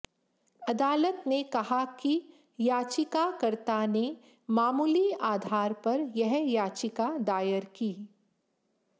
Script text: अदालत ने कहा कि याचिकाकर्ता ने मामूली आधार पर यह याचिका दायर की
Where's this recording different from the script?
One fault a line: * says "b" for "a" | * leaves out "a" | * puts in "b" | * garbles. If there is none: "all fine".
all fine